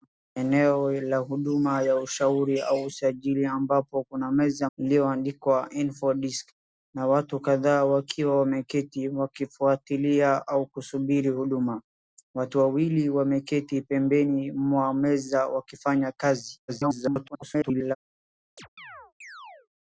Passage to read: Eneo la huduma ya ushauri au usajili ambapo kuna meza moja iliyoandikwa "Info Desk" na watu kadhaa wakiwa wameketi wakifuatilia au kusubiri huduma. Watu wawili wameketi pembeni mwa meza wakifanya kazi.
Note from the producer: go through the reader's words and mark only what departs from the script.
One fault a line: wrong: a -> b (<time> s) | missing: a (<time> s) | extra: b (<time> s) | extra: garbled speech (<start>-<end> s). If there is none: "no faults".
missing: moja (4.7 s)
extra: garbled speech (16.7-18.0 s)